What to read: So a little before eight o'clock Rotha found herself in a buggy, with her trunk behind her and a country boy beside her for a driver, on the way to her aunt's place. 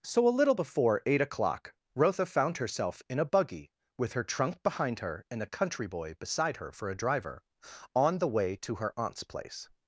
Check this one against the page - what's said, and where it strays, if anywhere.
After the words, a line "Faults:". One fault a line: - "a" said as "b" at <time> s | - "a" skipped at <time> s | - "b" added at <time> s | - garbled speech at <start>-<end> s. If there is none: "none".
So a little before eight o'clock Rotha found herself in a buggy, with her trunk behind her and a country boy beside her for a driver, on the way to her aunt's place.
Faults:
none